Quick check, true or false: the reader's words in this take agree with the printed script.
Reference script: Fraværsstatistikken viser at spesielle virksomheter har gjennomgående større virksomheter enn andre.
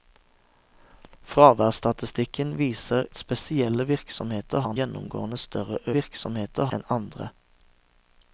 true